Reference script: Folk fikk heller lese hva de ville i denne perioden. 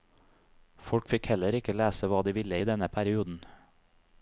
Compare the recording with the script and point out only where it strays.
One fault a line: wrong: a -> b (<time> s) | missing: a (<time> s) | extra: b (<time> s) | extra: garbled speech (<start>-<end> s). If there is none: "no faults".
extra: ikke (1.6 s)